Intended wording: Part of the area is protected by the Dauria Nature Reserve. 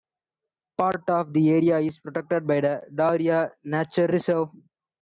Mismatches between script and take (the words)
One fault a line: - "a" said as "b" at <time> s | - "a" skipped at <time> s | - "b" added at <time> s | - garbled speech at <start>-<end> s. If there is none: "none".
none